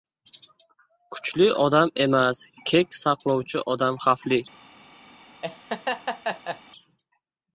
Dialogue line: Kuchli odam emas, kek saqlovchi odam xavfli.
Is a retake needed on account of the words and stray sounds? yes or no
yes